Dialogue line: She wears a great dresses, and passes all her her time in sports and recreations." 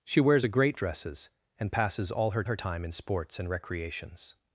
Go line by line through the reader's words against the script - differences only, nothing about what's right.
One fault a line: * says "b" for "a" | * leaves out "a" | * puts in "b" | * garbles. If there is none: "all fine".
all fine